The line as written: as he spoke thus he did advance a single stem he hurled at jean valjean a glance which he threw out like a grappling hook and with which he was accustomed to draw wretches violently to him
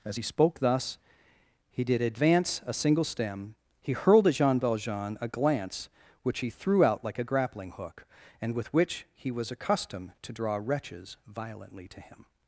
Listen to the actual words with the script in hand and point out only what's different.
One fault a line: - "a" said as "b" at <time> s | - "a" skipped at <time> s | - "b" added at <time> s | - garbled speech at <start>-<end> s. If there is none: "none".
none